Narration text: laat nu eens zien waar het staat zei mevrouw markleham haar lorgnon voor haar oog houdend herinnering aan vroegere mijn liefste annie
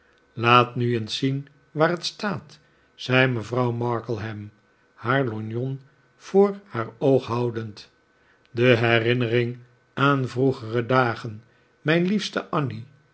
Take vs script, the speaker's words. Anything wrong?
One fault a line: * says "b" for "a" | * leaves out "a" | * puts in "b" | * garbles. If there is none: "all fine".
* puts in "de"
* puts in "dagen"